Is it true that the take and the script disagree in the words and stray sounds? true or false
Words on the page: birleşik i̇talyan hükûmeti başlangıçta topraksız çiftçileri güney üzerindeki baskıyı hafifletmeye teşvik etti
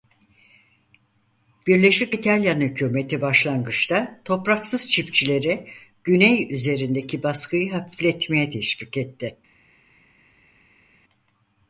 false